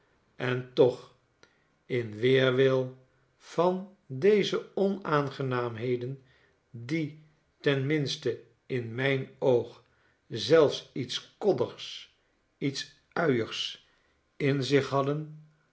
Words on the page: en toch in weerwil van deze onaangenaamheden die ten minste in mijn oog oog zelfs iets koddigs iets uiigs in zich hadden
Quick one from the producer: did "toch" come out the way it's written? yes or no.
yes